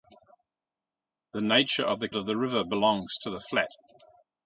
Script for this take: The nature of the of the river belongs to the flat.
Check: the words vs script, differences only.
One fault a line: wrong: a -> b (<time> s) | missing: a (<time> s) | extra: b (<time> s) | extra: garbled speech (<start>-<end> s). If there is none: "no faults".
no faults